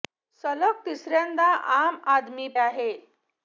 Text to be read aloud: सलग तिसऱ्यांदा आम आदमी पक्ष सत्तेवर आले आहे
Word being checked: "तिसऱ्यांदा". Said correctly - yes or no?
yes